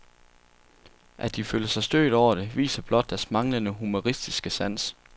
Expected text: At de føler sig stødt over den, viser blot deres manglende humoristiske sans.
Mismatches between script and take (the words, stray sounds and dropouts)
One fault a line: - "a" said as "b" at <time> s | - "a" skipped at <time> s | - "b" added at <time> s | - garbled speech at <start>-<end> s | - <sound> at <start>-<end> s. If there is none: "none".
- "den" said as "det" at 2.4 s